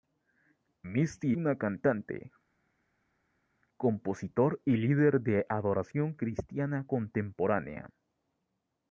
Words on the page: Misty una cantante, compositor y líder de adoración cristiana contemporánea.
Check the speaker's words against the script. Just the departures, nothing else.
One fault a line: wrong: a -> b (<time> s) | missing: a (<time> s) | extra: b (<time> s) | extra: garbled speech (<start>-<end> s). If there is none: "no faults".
no faults